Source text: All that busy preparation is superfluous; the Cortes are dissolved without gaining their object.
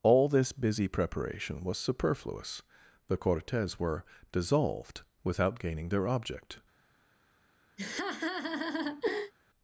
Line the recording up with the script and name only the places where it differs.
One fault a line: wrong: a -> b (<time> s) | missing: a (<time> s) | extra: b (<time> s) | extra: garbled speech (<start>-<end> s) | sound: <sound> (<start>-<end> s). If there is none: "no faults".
wrong: that -> this (0.3 s)
wrong: is -> was (1.6 s)
wrong: are -> were (3.8 s)
sound: laugh (7.8-9.3 s)